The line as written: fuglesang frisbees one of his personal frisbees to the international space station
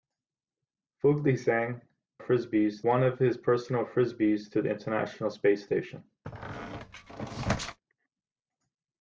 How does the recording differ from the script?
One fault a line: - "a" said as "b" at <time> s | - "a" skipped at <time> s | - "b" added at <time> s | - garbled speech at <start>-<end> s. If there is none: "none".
none